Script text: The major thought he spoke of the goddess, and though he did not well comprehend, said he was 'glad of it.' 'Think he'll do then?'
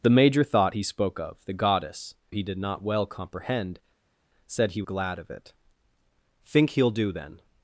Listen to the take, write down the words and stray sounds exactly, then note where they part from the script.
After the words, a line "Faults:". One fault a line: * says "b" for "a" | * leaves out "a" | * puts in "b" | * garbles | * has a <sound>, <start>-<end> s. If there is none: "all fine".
The major thought he spoke of the goddess, he did not well comprehend, said he 'glad of it.' 'Think he'll do then?'
Faults:
* leaves out "and though"
* leaves out "was"